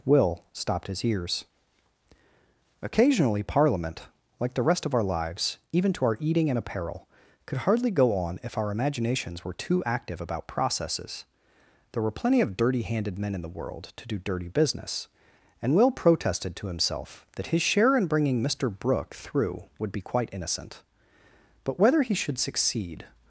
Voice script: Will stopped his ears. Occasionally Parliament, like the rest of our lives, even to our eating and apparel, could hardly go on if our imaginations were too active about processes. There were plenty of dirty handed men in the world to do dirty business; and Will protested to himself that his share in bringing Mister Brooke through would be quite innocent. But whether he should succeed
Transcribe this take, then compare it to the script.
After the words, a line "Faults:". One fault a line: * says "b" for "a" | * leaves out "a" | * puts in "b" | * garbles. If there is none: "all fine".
Will stopped his ears. Occasionally Parliament, like the rest of our lives, even to our eating and apparel, could hardly go on if our imaginations were too active about processes. There were plenty of dirty handed men in the world to do dirty business; and Will protested to himself that his share in bringing Mister Brooke through would be quite innocent. But whether he should succeed
Faults:
all fine